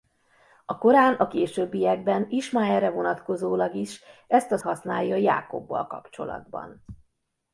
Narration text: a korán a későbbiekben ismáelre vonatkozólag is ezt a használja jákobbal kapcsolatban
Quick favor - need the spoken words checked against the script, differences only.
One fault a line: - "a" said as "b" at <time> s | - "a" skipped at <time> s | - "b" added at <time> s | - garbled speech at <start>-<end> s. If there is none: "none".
none